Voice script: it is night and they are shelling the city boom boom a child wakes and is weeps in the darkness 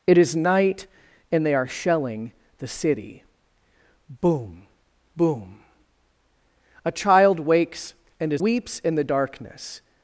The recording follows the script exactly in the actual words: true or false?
true